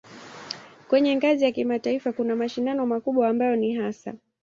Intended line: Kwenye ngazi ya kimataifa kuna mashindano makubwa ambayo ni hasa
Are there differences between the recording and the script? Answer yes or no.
no